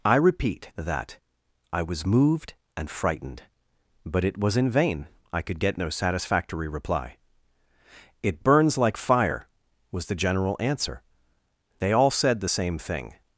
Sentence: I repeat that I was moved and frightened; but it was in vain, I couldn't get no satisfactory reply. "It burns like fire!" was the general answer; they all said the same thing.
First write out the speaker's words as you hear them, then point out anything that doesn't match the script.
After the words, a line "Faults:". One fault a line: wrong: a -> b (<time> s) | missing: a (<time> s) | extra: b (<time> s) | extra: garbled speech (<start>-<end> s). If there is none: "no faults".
I repeat that I was moved and frightened; but it was in vain, I could get no satisfactory reply. "It burns like fire!" was the general answer; they all said the same thing.
Faults:
wrong: couldn't -> could (5.4 s)